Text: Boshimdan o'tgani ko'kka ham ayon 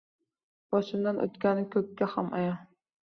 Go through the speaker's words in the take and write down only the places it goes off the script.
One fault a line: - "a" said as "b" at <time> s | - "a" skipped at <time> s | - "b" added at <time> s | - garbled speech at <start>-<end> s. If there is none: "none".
none